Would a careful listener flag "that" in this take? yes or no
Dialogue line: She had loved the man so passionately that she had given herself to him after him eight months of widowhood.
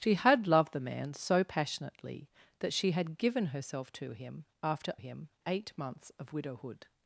no